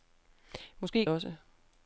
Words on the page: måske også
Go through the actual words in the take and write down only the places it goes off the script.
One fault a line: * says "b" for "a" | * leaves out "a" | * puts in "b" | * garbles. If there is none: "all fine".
all fine